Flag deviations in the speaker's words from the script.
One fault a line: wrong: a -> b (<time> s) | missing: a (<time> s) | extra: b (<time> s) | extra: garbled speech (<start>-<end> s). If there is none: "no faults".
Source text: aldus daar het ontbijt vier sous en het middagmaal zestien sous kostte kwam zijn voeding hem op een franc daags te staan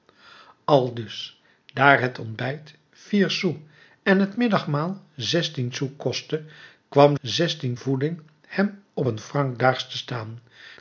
wrong: zijn -> zestien (7.2 s)